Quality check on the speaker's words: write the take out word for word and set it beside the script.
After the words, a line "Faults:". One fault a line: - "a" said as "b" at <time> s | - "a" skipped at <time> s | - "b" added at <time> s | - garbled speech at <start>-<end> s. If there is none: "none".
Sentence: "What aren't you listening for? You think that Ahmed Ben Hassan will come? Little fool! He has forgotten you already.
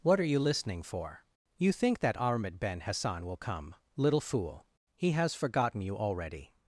"What are you listening for? You think that Ahmed Ben Hassan will come? Little fool! He has forgotten you already.
Faults:
- "aren't" said as "are" at 0.2 s